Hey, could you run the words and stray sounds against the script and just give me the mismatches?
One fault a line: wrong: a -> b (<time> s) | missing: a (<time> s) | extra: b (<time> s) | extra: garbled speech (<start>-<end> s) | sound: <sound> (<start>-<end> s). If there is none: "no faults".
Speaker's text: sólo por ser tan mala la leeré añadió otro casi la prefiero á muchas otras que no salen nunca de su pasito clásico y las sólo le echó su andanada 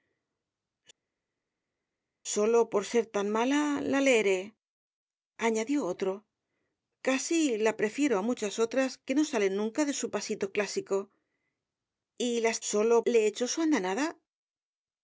no faults